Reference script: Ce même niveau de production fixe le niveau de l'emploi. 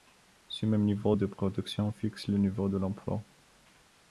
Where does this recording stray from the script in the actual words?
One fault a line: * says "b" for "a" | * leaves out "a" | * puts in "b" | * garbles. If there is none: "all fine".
all fine